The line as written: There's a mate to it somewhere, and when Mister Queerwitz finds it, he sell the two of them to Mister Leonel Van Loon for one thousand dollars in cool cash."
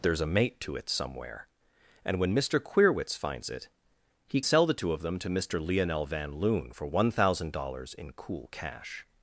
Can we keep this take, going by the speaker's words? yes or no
yes